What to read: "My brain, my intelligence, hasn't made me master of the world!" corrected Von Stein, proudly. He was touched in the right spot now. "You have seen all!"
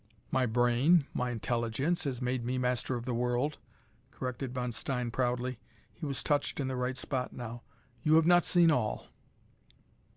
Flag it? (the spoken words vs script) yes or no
yes